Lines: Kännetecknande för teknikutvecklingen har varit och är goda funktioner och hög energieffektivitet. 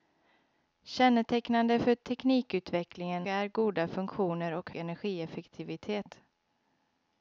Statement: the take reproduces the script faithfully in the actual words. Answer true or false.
false